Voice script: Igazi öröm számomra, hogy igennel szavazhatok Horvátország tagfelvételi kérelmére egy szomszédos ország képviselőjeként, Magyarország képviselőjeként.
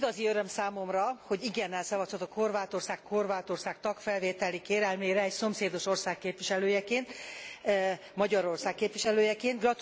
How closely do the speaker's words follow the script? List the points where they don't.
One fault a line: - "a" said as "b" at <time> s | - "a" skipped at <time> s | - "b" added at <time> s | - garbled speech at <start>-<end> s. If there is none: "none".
- "Horvátország" added at 3.1 s